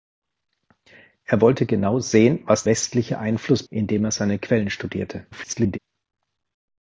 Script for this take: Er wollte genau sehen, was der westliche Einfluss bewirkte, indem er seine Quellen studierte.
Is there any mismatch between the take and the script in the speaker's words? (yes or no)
yes